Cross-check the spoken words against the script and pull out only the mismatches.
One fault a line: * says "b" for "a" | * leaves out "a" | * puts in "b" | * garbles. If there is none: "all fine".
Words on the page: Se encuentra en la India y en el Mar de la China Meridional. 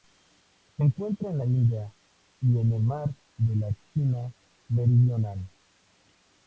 all fine